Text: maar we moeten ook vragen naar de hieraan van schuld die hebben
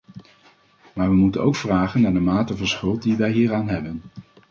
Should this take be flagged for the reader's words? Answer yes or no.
yes